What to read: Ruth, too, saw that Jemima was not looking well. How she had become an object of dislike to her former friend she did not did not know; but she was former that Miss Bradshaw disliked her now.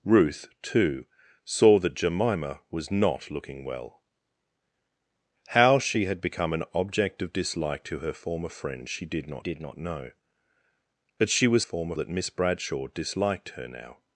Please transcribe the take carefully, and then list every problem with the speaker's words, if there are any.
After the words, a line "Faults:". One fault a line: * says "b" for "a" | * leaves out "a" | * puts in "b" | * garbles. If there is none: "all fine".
Ruth, too, saw that Jemima was not looking well. How she had become an object of dislike to her former friend she did not did not know; but she was former that Miss Bradshaw disliked her now.
Faults:
all fine